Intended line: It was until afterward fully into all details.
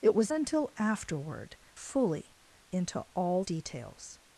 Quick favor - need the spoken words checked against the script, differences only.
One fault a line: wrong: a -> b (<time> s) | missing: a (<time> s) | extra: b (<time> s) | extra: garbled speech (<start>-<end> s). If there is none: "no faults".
no faults